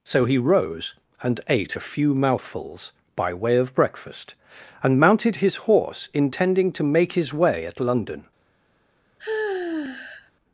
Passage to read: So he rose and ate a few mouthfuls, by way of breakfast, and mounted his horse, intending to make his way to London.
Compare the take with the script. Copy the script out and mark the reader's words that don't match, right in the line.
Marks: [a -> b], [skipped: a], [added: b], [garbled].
So he rose and ate a few mouthfuls, by way of breakfast, and mounted his horse, intending to make his way [to -> at] London.